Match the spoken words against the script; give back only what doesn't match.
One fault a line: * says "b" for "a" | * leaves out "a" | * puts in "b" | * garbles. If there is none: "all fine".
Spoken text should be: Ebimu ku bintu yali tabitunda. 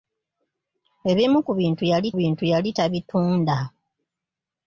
* puts in "bintu yali"